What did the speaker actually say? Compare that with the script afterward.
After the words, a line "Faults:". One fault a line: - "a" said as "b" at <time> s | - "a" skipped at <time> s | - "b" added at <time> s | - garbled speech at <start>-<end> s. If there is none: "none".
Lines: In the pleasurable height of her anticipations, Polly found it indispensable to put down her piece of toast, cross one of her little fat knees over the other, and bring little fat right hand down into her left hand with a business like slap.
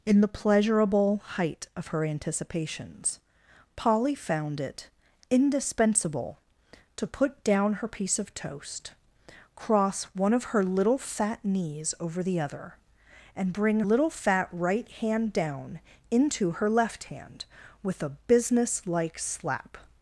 In the pleasurable height of her anticipations, Polly found it indispensable to put down her piece of toast, cross one of her little fat knees over the other, and bring little fat right hand down into her left hand with a business like slap.
Faults:
none